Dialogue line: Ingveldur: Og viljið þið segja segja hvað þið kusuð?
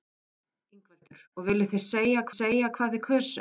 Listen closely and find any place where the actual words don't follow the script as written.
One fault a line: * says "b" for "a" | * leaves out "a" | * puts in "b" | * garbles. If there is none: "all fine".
all fine